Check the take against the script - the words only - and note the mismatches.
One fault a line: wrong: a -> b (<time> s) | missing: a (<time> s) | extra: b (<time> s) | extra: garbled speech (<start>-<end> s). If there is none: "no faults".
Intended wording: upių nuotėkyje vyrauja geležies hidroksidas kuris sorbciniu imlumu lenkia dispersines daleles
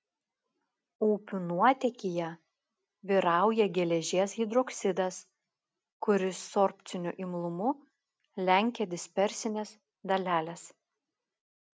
no faults